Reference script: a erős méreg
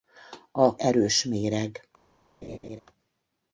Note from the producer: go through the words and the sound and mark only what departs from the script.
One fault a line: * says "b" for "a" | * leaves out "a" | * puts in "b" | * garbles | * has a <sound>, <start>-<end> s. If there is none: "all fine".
* has a laugh, 2.4-2.8 s